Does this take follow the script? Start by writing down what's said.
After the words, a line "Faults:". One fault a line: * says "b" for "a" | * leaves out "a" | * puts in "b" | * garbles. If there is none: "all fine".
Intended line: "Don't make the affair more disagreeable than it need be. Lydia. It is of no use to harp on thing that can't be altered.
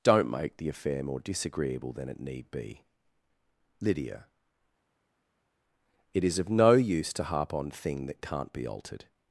"Don't make the affair more disagreeable than it need be. Lydia. It is of no use to harp on thing that can't be altered.
Faults:
all fine